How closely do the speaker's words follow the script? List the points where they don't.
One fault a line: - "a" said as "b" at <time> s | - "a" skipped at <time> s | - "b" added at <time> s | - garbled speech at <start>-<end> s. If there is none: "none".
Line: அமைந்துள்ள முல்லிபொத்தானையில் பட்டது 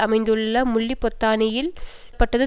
none